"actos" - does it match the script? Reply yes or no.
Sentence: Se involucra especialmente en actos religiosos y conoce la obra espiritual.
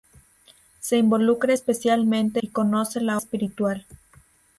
no